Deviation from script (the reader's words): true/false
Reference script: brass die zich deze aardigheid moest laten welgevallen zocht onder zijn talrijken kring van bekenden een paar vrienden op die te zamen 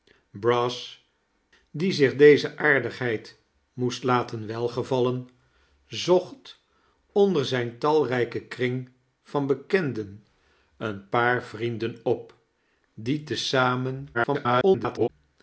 true